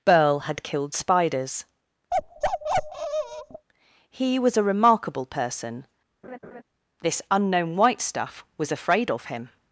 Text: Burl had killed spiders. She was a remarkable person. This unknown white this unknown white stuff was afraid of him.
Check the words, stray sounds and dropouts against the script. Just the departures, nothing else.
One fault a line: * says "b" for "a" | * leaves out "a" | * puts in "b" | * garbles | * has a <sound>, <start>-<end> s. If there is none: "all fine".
* has a bark, 2.1-3.7 s
* says "He" for "She"
* has a laugh, 6.2-6.6 s
* leaves out "this unknown white"